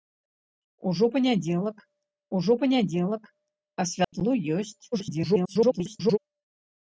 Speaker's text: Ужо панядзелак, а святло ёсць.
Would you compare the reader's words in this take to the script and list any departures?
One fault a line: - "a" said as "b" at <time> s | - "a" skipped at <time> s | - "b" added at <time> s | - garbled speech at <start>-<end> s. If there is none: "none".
- "ужо панядзелак" added at 2.4 s
- garbled speech at 4.9-6.2 s